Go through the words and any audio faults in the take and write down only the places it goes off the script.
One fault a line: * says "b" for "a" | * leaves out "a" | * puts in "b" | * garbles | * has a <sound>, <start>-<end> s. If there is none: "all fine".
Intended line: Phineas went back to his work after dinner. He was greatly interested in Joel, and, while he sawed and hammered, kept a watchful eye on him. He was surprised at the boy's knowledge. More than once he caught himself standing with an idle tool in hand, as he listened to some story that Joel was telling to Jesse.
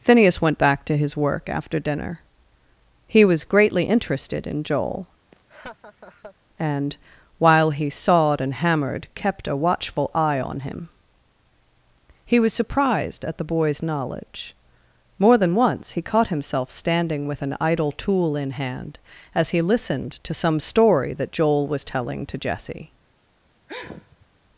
* has a laugh, 5.3-6.4 s
* has a sneeze, 23.7-24.4 s